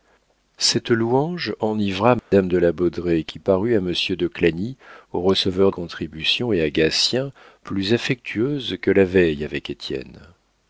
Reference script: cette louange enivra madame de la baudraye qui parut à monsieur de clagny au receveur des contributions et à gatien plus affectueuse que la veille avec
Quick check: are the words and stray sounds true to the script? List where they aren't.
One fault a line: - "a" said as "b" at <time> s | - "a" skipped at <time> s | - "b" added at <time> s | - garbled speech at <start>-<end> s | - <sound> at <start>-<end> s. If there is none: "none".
- dropout at 2.2-2.3 s
- "des" skipped at 5.7 s